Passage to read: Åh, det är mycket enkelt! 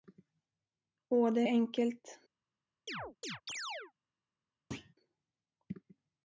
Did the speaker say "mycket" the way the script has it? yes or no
no